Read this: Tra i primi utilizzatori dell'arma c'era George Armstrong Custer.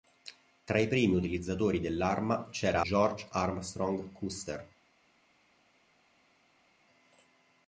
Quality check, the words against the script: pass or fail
pass